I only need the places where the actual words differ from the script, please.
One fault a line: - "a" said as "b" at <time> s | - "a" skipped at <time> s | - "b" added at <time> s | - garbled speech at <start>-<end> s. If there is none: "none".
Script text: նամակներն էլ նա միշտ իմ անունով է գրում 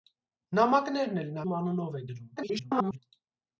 - "միշտ" skipped at 1.4 s
- garbled speech at 2.4-3.0 s